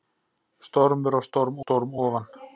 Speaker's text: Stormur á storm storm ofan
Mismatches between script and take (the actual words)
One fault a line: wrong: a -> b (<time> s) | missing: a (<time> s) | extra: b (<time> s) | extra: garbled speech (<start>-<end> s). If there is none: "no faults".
no faults